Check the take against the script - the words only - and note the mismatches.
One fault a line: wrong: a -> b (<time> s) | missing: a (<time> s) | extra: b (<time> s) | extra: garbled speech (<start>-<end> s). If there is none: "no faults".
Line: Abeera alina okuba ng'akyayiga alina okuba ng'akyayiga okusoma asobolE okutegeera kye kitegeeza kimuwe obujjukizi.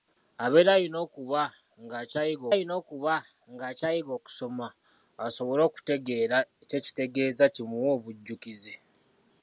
no faults